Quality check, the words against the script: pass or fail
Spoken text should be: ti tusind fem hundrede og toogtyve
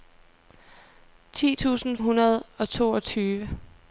fail